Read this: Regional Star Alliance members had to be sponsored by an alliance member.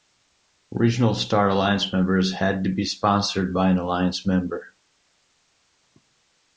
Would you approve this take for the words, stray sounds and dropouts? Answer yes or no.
yes